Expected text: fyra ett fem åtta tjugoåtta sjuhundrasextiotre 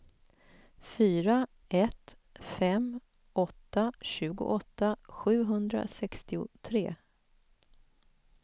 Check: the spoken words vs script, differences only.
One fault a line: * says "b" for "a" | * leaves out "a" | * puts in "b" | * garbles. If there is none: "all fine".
all fine